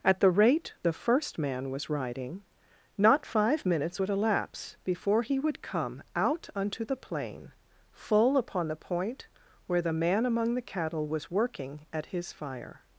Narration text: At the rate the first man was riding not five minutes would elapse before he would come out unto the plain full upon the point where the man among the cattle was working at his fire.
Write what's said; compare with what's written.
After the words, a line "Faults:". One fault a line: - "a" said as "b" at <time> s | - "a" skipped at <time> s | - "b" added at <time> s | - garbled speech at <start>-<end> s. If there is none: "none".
At the rate the first man was riding not five minutes would elapse before he would come out unto the plain full upon the point where the man among the cattle was working at his fire.
Faults:
none